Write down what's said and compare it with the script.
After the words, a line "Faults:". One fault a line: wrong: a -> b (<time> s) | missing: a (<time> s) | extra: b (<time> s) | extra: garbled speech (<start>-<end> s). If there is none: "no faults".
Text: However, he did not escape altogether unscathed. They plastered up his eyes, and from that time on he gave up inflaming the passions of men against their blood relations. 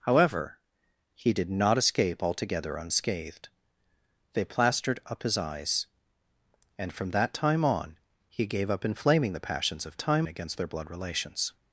However, he did not escape altogether unscathed. They plastered up his eyes, and from that time on he gave up inflaming the passions of time against their blood relations.
Faults:
wrong: men -> time (10.0 s)